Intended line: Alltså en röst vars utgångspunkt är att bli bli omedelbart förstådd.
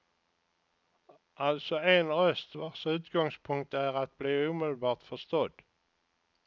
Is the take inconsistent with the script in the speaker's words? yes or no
yes